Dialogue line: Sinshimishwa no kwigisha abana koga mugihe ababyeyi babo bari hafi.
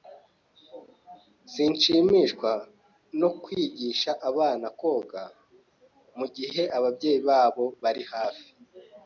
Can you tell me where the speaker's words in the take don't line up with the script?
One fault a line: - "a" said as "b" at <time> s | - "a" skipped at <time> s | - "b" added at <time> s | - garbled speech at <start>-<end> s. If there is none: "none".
none